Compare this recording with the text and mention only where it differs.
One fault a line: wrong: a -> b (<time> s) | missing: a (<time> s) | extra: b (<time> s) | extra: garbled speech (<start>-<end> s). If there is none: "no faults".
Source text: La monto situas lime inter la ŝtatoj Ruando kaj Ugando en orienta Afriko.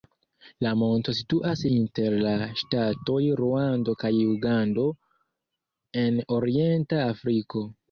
missing: lime (1.6 s)